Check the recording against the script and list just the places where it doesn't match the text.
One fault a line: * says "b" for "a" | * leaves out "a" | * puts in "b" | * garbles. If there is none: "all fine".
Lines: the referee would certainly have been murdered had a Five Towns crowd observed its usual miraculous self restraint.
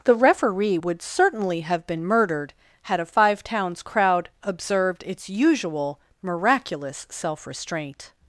all fine